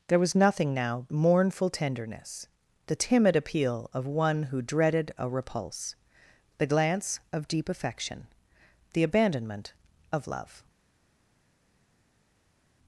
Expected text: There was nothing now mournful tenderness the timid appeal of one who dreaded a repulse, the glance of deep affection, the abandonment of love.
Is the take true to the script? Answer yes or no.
yes